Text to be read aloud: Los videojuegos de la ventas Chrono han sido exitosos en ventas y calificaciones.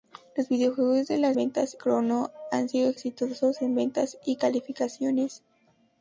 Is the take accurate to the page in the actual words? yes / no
yes